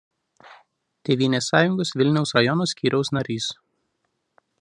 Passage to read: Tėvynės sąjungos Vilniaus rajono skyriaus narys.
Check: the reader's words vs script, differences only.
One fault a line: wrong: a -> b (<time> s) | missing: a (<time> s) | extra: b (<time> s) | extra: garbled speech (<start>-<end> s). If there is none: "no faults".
no faults